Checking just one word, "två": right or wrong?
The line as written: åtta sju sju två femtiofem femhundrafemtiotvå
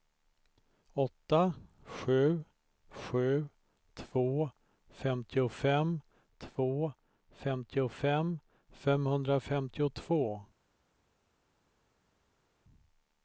right